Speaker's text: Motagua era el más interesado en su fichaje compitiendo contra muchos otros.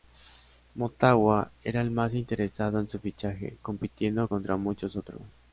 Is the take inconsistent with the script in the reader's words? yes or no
no